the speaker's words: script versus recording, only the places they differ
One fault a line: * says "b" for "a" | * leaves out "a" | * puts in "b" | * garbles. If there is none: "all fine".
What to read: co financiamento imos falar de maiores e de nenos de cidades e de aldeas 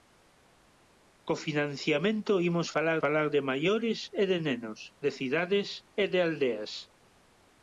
* puts in "falar"